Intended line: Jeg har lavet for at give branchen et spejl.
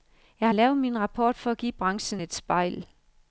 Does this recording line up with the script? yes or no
no